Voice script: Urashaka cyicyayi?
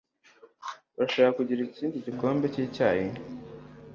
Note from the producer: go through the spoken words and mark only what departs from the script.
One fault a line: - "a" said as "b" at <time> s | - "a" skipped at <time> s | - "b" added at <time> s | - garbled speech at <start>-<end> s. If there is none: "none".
- "kugira ikindi gikombe" added at 1.4 s